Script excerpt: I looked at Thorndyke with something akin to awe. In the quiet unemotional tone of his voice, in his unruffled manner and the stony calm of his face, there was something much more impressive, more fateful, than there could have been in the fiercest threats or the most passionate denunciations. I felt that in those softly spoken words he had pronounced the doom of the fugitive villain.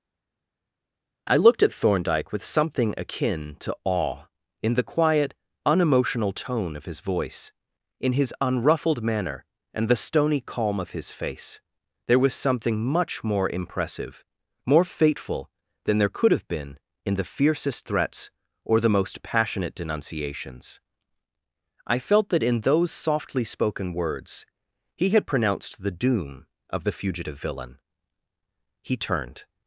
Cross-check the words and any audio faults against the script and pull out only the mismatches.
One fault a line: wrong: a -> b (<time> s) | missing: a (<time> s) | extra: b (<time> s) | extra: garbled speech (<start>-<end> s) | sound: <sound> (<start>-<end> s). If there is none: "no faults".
extra: He turned (28.8 s)